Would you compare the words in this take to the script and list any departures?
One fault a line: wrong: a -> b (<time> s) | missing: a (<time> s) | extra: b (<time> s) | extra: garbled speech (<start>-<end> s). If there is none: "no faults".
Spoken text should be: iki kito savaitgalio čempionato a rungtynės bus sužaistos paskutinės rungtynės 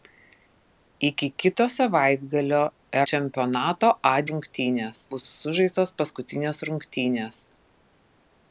no faults